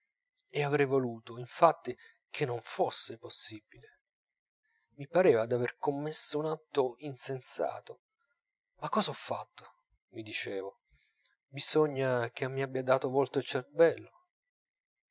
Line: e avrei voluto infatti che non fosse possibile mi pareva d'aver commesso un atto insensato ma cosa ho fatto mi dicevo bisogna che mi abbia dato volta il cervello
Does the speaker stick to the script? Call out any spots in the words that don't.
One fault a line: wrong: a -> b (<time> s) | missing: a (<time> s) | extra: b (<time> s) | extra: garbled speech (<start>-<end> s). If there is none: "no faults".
no faults